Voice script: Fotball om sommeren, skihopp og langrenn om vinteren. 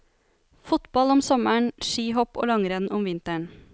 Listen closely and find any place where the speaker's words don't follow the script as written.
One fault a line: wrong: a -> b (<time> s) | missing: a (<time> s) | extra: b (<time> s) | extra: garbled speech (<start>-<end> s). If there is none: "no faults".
no faults